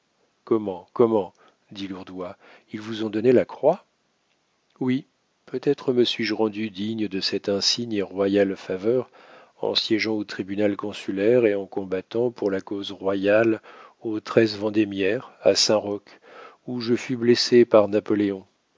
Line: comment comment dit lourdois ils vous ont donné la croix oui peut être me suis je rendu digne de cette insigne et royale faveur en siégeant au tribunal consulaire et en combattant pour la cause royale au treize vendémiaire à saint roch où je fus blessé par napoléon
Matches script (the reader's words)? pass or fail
pass